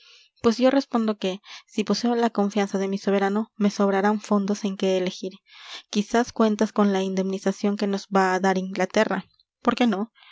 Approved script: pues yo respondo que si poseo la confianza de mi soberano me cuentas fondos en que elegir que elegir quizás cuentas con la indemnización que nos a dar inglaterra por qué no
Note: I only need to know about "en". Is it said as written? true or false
true